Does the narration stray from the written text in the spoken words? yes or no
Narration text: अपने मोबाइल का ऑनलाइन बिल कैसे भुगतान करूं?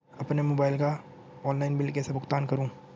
no